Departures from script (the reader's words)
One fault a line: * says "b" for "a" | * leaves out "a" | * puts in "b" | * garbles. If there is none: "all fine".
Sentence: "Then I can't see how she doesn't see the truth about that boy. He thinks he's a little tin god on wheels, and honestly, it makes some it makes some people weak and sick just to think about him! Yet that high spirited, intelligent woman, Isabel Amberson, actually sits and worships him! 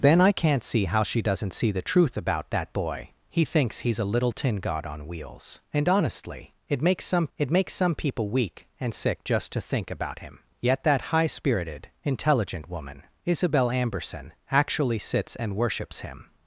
all fine